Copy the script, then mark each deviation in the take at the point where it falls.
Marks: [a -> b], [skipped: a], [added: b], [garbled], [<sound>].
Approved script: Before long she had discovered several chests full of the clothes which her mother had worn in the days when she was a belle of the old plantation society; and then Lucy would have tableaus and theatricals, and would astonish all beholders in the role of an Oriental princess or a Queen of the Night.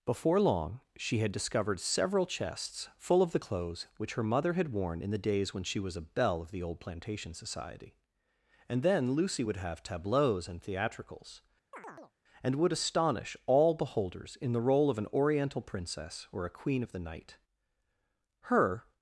Before long she had discovered several chests full of the clothes which her mother had worn in the days when she was a belle of the old plantation society; and then Lucy would have tableaus and theatricals, [chirp] and would astonish all beholders in the role of an Oriental princess or a Queen of the Night. [added: Her]